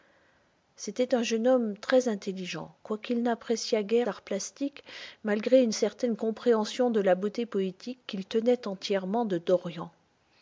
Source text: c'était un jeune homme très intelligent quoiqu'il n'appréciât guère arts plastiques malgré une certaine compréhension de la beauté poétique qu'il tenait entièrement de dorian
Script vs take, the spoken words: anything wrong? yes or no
no